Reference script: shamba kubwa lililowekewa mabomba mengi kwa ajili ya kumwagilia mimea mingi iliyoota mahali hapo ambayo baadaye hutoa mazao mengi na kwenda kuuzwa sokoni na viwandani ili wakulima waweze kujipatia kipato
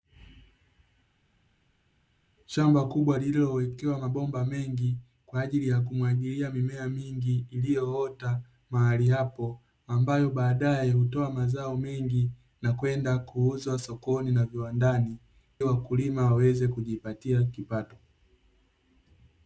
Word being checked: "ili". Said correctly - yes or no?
no